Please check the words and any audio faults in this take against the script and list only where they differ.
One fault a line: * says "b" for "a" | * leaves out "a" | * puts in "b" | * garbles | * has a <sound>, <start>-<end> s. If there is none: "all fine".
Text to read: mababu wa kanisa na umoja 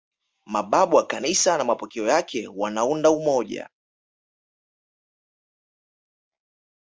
* puts in "mapokeo yake wanaunda"